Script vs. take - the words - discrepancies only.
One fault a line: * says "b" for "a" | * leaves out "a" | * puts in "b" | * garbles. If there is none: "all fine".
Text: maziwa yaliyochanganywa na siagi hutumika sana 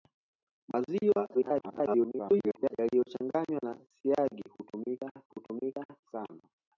* garbles
* puts in "hutumika"